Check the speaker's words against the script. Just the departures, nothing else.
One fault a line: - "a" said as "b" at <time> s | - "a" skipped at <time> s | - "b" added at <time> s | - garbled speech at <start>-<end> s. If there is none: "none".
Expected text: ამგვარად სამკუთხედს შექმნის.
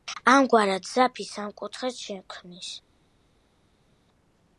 - "ძაფი" added at 0.9 s